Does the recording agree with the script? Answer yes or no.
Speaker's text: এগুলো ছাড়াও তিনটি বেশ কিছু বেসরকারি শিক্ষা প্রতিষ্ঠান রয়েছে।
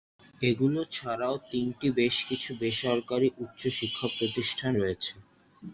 no